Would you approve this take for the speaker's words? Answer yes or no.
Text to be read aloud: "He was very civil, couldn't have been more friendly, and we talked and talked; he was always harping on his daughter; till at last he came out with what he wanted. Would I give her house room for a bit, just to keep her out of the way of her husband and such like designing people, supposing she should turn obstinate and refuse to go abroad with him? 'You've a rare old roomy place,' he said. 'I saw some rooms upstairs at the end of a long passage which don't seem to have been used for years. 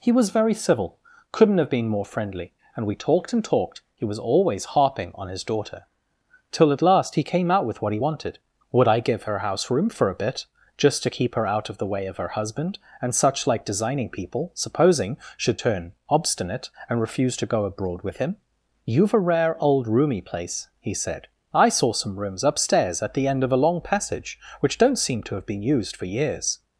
no